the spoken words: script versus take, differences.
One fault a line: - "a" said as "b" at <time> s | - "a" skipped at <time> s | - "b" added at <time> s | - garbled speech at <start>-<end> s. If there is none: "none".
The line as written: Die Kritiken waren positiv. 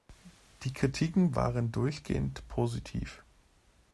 - "durchgehend" added at 1.7 s